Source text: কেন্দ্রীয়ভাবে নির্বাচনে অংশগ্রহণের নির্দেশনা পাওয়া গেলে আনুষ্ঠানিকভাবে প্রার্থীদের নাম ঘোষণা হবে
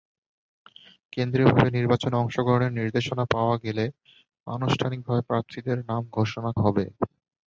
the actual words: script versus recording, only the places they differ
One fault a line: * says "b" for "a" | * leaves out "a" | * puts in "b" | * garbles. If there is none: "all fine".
all fine